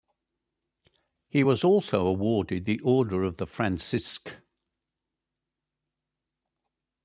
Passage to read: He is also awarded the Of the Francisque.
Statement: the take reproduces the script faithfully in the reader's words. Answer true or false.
false